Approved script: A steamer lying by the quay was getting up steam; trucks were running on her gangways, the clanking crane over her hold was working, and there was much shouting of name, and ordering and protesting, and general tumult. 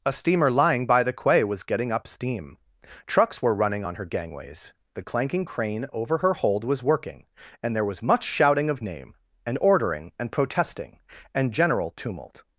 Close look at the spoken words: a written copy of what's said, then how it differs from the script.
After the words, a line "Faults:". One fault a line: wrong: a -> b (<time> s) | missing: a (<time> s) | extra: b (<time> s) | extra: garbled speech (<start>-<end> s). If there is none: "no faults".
A steamer lying by the quay was getting up steam; trucks were running on her gangways, the clanking crane over her hold was working, and there was much shouting of name, and ordering and protesting, and general tumult.
Faults:
no faults